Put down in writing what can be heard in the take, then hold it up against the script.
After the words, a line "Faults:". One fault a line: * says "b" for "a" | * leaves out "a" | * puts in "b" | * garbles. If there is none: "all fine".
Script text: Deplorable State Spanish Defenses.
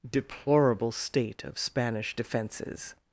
Deplorable State of Spanish Defenses.
Faults:
* puts in "of"